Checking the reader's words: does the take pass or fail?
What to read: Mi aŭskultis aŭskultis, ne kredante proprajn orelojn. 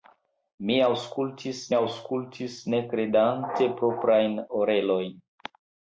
pass